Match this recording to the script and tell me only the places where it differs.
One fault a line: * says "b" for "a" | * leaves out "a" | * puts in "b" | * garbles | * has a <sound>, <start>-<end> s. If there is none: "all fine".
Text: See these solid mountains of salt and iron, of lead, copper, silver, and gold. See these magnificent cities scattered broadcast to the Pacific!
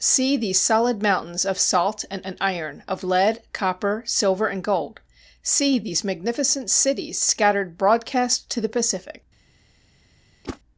* puts in "and"
* has a whoosh, 10.4-10.6 s